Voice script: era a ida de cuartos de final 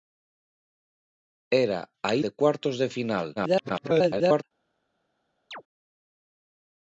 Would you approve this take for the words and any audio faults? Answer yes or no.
no